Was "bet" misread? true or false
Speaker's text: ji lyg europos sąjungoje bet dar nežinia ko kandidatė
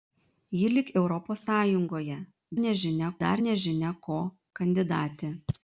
true